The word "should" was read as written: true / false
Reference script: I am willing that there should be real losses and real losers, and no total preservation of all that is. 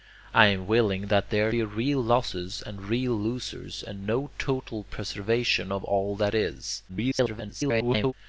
false